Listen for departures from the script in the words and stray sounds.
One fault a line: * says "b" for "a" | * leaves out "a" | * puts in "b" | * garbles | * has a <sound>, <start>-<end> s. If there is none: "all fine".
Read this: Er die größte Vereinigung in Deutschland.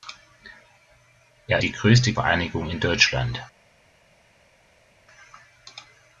all fine